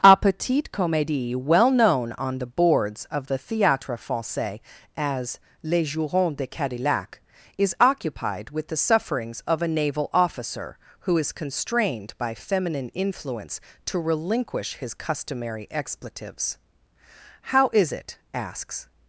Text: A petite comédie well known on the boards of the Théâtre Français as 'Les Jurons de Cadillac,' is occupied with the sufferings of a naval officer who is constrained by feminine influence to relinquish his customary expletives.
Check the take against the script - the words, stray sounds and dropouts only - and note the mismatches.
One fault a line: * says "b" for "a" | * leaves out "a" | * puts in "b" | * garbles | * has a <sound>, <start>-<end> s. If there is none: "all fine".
* puts in "How is it asks"